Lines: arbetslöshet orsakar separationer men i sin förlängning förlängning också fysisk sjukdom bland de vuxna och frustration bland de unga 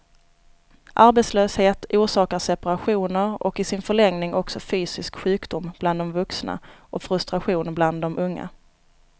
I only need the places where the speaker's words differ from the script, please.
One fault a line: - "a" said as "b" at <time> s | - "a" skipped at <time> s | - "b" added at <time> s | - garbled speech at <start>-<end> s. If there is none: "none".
- "men" said as "och" at 3.4 s
- "förlängning" skipped at 4.3 s